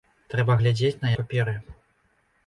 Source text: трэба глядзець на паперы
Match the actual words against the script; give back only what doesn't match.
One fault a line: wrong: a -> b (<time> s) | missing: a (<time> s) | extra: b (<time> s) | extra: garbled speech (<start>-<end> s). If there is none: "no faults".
no faults